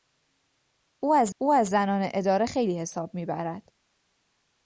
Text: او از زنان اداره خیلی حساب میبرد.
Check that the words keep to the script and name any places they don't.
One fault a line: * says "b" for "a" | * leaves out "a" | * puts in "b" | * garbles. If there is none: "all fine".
* puts in "او از"